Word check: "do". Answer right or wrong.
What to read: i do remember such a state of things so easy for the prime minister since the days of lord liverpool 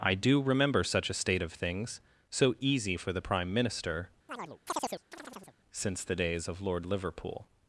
right